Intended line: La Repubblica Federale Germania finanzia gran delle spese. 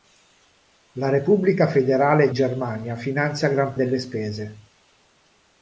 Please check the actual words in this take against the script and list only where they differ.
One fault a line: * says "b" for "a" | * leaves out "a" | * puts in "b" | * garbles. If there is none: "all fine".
all fine